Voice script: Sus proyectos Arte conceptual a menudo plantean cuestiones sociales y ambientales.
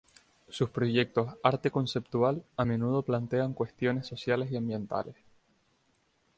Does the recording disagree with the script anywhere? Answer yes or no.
no